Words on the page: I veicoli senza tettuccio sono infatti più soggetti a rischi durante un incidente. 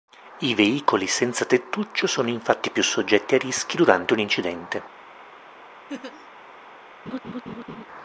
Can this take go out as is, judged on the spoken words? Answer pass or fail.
pass